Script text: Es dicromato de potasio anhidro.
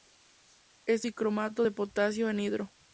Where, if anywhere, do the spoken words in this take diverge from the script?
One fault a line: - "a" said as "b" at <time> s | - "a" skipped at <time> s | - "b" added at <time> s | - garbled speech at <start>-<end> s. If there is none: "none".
none